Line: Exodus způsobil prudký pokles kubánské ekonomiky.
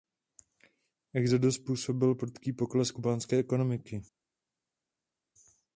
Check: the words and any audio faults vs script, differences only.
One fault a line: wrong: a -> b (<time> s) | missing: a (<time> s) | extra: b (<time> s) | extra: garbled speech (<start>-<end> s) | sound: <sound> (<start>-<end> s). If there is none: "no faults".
no faults